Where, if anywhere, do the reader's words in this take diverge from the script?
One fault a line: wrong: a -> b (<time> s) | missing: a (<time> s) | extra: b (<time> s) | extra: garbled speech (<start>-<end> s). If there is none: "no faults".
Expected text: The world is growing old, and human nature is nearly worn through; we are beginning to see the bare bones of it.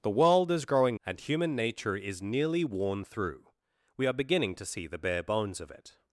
missing: old (1.0 s)